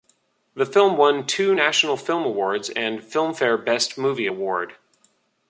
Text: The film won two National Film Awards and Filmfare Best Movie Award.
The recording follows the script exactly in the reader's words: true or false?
true